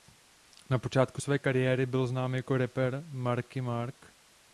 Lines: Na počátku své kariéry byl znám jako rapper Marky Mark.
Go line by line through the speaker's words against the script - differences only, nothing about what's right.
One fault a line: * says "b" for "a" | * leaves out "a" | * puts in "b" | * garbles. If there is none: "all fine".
all fine